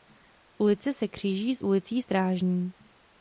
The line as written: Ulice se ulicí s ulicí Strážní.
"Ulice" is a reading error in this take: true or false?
false